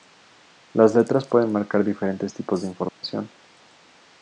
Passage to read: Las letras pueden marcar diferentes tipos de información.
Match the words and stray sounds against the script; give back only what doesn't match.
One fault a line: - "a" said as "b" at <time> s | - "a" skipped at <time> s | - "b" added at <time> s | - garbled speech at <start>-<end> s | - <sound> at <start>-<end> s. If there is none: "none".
- dropout at 2.9-3.0 s